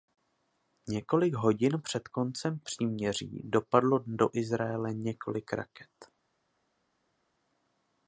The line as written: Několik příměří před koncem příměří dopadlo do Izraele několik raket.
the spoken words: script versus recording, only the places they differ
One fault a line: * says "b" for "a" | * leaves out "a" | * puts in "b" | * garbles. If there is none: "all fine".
* says "hodin" for "příměří"